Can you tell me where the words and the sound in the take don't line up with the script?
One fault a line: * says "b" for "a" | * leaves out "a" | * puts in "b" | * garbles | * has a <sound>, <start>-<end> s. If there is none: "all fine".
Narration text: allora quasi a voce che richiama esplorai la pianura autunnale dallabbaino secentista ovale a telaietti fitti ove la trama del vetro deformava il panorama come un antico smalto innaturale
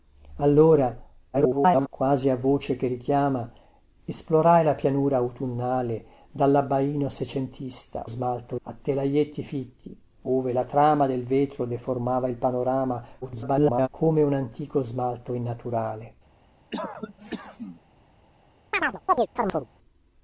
* garbles
* says "smalto" for "ovale"
* garbles
* has a cough, 16.7-17.8 s
* has a chirp, 18.7-19.7 s